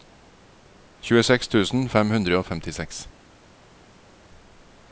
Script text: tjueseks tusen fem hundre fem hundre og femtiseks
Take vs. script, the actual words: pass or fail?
fail